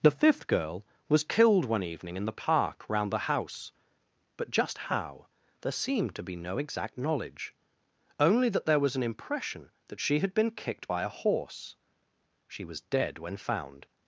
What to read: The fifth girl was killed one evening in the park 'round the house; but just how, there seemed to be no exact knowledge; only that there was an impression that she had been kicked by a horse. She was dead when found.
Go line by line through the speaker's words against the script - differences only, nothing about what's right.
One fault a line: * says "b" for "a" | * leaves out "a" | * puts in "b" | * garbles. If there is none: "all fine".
all fine